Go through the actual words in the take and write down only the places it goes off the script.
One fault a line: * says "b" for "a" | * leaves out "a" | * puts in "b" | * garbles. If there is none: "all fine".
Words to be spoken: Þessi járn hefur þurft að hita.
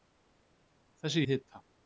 * leaves out "járn hefur þurft"